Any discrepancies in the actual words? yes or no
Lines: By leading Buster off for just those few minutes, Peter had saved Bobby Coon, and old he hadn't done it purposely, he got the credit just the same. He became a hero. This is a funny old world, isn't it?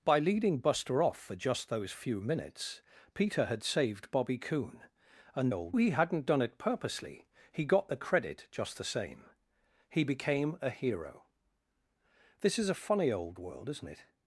no